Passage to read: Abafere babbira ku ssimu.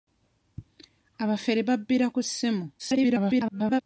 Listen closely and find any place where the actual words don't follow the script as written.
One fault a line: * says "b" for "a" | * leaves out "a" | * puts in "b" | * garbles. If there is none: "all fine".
* garbles